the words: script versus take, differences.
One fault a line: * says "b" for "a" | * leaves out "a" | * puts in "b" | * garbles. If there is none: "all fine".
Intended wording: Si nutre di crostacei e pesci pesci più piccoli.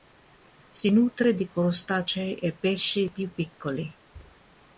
* leaves out "pesci"